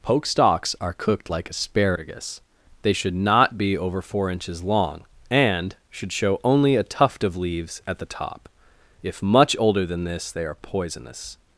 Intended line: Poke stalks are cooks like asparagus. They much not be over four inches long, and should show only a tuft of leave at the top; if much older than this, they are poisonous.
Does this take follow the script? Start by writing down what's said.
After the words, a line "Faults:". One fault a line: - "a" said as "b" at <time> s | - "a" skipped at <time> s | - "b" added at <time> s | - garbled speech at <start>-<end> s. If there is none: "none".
Poke stalks are cooked like asparagus. They should not be over four inches long, and should show only a tuft of leaves at the top; if much older than this, they are poisonous.
Faults:
- "cooks" said as "cooked" at 0.9 s
- "much" said as "should" at 2.9 s
- "leave" said as "leaves" at 7.3 s